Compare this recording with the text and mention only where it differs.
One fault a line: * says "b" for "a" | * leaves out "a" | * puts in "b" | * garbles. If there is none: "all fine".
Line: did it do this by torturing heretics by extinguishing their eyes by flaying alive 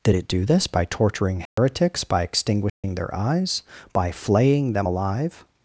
* puts in "them"